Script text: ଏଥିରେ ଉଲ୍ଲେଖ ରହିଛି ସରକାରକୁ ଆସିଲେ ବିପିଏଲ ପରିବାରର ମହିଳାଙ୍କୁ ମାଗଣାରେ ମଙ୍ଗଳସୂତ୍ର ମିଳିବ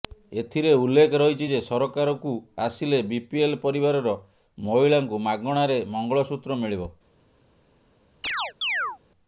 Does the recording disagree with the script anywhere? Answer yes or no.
yes